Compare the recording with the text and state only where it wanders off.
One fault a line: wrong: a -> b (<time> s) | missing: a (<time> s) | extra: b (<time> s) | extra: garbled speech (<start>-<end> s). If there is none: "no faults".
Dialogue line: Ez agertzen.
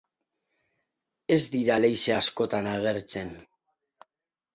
extra: dira leize askotan (1.6 s)